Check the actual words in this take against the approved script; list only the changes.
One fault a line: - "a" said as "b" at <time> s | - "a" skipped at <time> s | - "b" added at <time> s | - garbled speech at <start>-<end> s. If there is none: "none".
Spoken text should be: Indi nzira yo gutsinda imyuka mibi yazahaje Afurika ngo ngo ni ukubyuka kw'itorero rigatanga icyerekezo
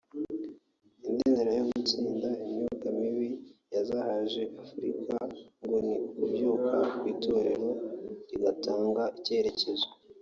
- "ngo" skipped at 5.8 s